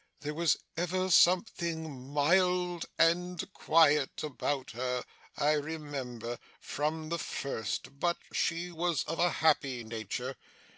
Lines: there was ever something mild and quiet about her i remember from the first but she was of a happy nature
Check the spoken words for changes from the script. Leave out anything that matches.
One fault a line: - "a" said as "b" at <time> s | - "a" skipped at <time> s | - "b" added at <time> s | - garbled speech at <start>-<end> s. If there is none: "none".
none